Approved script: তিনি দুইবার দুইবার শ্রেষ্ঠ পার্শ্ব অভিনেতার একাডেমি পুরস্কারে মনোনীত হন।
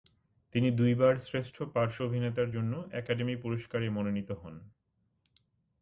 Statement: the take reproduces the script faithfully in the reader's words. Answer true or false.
false